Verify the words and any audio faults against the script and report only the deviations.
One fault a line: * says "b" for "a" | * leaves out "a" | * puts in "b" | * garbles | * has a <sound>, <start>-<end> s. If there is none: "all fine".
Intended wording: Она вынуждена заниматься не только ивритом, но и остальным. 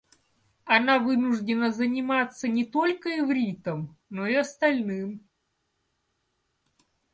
all fine